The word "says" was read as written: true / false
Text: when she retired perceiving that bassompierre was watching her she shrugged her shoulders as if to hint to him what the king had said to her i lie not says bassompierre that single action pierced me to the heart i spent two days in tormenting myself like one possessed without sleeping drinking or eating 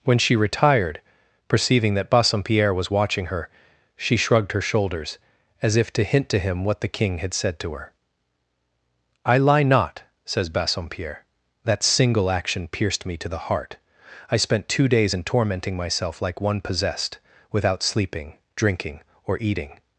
true